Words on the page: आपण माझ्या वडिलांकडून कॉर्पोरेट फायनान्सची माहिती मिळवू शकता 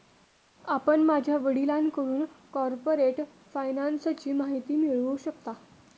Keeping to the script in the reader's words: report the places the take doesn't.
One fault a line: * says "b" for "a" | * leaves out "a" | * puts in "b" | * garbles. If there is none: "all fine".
all fine